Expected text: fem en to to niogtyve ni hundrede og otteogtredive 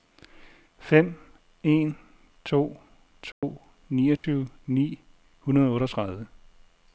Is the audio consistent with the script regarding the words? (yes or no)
yes